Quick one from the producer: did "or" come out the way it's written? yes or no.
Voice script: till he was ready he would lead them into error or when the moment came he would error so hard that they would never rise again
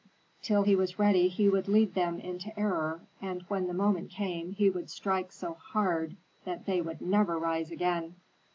no